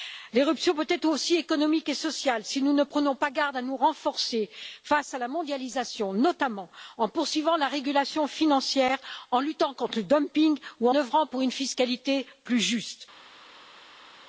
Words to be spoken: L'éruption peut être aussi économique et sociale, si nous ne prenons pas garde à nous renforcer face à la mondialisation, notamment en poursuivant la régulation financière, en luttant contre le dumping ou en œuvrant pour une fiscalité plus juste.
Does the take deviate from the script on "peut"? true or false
false